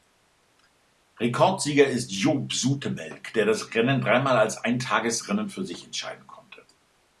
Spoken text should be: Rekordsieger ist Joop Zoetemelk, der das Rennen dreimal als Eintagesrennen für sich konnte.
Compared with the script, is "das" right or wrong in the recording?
right